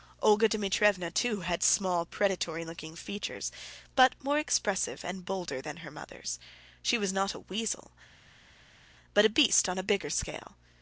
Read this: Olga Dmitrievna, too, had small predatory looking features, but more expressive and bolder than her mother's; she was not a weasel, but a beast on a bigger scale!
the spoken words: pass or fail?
pass